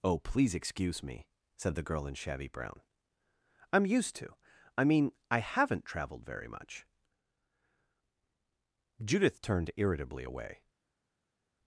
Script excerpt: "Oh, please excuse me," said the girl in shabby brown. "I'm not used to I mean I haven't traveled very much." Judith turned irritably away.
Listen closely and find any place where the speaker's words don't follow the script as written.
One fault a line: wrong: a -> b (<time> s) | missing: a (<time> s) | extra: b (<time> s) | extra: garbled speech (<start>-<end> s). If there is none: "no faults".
missing: not (3.9 s)